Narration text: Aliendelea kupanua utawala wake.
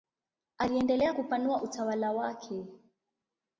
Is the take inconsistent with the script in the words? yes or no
no